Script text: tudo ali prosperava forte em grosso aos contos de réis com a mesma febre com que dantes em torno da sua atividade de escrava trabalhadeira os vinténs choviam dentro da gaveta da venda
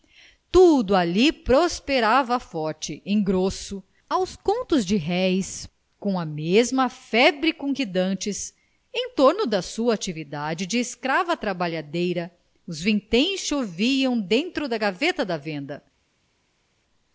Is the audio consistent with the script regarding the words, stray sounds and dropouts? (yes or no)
yes